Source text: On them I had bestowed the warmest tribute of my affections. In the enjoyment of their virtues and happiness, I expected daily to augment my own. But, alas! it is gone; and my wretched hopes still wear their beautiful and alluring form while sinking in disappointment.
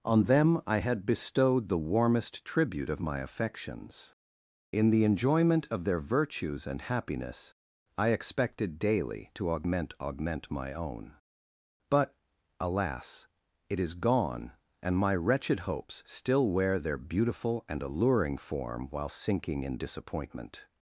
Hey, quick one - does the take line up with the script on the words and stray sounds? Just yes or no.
no